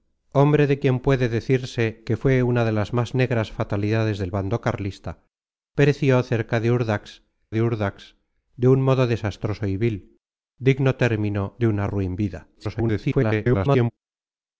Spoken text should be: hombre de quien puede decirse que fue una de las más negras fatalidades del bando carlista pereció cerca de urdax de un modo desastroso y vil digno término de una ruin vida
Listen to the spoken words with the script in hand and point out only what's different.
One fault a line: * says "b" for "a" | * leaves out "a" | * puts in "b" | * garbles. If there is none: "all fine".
* puts in "urdax de"
* garbles